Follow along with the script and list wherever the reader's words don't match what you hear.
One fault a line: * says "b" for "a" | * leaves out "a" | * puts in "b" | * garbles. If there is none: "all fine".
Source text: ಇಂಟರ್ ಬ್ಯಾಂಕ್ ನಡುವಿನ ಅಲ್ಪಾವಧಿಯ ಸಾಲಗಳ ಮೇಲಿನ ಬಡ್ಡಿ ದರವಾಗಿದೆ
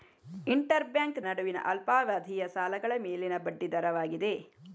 all fine